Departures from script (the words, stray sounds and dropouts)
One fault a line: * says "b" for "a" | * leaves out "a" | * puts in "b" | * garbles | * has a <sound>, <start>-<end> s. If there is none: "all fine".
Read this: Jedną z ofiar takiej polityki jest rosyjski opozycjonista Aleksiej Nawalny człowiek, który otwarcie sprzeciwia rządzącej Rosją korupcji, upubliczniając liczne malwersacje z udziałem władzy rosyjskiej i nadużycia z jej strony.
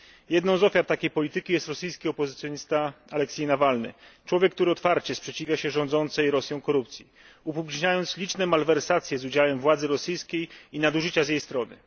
* puts in "się"